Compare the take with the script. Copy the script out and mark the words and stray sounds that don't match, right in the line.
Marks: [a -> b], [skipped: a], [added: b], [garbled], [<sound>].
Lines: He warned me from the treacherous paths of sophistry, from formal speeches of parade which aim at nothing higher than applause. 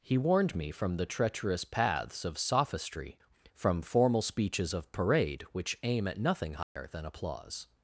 He warned me from the treacherous paths of sophistry, from formal speeches of parade which aim at nothing higher [dropout] than applause.